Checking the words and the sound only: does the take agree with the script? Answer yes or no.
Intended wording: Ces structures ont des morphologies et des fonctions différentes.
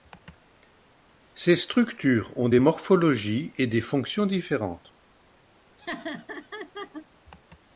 no